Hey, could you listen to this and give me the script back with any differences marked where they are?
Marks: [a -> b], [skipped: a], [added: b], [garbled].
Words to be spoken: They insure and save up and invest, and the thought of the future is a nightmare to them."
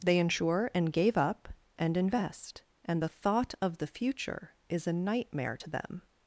They insure and [save -> gave] up and invest, and the thought of the future is a nightmare to them."